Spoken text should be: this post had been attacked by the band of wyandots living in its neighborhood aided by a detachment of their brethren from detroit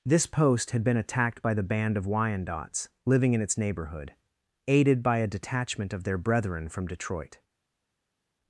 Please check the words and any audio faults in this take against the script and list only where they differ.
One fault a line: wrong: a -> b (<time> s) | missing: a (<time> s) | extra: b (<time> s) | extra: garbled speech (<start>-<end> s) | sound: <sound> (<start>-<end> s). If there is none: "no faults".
no faults